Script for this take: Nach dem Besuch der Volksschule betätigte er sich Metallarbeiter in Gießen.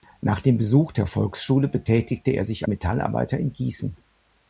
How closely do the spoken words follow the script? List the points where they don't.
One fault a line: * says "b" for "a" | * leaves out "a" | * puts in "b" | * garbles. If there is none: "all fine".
all fine